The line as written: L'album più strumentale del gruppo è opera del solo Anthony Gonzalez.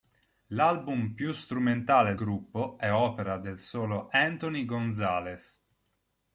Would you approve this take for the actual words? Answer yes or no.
no